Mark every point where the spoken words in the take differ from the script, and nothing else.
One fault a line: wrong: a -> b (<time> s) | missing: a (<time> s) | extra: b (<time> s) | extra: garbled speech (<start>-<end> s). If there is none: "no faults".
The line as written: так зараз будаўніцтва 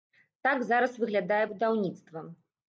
extra: выглядае (1.0 s)